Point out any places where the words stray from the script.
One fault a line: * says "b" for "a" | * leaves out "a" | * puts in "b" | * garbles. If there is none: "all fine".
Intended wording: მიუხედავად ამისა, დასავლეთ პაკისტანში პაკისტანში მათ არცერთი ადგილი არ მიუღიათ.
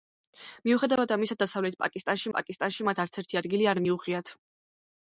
all fine